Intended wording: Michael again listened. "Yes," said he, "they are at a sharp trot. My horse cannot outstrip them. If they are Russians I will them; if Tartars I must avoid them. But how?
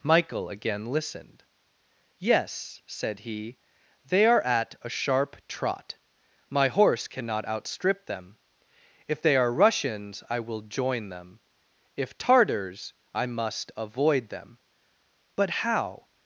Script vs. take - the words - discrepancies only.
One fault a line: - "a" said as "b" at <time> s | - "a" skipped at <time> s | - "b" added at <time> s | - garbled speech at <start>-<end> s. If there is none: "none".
- "join" added at 10.6 s